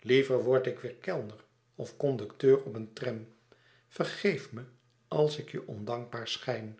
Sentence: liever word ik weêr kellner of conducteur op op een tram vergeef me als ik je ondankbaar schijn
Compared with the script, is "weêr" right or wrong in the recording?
right